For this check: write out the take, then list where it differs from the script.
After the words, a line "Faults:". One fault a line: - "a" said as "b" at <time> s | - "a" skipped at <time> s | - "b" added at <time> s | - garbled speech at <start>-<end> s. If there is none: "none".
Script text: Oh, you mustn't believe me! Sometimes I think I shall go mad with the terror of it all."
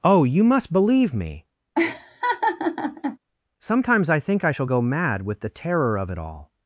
Oh, you must believe me! Sometimes I think I shall go mad with the terror of it all."
Faults:
- "mustn't" said as "must" at 0.4 s